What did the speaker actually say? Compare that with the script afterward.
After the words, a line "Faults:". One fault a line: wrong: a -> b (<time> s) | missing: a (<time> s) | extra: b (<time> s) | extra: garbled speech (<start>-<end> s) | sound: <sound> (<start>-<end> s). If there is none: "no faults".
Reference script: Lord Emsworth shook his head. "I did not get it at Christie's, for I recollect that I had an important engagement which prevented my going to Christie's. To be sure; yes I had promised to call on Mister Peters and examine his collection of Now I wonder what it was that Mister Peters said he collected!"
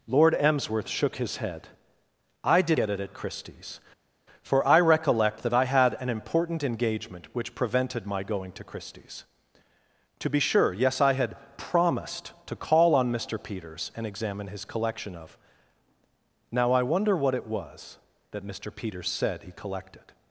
Lord Emsworth shook his head. "I did get it at Christie's, for I recollect that I had an important engagement which prevented my going to Christie's. To be sure; yes I had promised to call on Mister Peters and examine his collection of Now I wonder what it was that Mister Peters said he collected!"
Faults:
missing: not (2.8 s)